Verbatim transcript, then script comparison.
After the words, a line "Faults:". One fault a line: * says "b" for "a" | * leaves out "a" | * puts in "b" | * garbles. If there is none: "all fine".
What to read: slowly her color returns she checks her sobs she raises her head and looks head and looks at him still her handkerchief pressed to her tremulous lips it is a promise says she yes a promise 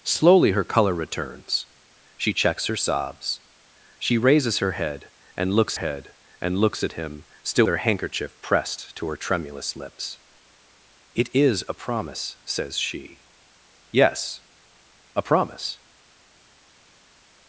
slowly her color returns she checks her sobs she raises her head and looks head and looks at him still her handkerchief pressed to her tremulous lips it is a promise says she yes a promise
Faults:
all fine